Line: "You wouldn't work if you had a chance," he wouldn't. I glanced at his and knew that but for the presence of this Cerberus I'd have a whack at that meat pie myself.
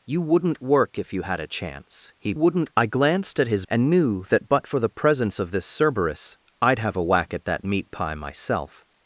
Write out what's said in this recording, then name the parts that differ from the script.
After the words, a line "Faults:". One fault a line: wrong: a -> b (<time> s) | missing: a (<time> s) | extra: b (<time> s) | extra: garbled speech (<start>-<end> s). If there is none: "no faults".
"You wouldn't work if you had a chance," he wouldn't. I glanced at his and knew that but for the presence of this Cerberus I'd have a whack at that meat pie myself.
Faults:
no faults